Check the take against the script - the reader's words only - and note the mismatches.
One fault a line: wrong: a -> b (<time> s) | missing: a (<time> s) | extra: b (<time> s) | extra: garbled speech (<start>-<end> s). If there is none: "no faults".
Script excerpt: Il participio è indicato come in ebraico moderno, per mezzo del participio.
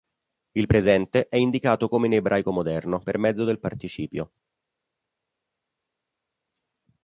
wrong: participio -> presente (0.6 s)